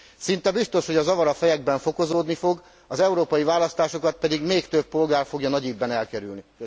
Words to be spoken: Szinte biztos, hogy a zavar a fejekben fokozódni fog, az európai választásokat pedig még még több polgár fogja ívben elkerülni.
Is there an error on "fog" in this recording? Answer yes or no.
no